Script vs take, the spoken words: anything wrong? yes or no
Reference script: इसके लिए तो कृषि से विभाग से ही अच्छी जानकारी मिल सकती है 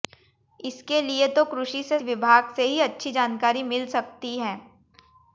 no